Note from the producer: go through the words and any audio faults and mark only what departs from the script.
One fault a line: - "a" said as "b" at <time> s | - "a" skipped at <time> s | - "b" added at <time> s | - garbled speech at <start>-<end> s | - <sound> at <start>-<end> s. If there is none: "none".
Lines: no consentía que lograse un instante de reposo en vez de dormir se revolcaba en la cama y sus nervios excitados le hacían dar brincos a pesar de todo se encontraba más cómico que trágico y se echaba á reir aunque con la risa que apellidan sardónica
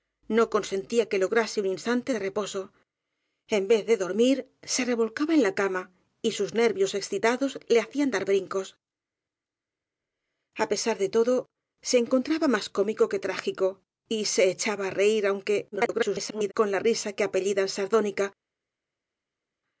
- garbled speech at 15.7-16.5 s